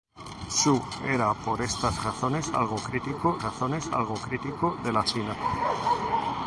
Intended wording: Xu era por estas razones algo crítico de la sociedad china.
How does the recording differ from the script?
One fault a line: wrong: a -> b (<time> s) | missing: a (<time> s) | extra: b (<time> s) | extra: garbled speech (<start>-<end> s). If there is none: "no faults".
extra: razones algo crítico (3.4 s)
missing: sociedad (5.0 s)